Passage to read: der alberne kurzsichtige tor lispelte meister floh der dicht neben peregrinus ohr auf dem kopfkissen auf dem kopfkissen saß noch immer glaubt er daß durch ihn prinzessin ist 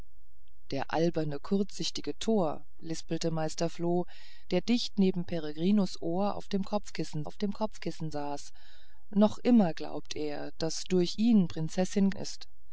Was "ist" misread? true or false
false